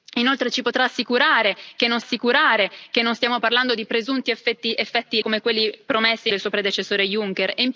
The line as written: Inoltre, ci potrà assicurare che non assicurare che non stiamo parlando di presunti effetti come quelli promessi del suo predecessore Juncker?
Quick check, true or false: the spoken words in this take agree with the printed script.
true